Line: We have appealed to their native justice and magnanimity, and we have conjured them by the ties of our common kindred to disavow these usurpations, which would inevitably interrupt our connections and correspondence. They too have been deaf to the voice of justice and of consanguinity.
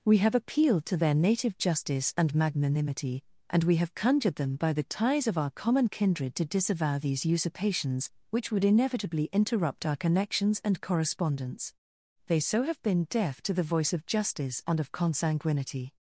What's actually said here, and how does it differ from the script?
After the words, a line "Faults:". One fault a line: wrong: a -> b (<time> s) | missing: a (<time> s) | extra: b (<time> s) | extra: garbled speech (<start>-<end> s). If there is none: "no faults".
We have appealed to their native justice and magnanimity, and we have conjured them by the ties of our common kindred to disavow these usurpations, which would inevitably interrupt our connections and correspondence. They so have been deaf to the voice of justice and of consanguinity.
Faults:
wrong: too -> so (12.4 s)